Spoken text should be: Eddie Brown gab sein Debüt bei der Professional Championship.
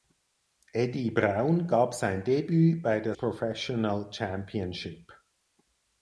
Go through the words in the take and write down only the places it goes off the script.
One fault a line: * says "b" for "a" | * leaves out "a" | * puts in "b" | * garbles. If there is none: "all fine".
all fine